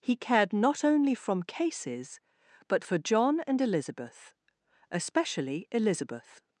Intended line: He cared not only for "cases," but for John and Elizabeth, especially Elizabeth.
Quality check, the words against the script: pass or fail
fail